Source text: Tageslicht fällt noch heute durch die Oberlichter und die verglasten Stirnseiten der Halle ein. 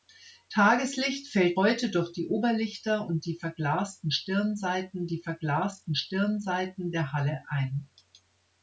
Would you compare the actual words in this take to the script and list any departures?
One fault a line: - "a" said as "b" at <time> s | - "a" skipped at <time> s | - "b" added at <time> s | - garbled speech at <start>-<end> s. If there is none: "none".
- "noch" skipped at 1.6 s
- "die verglasten Stirnseiten" added at 5.1 s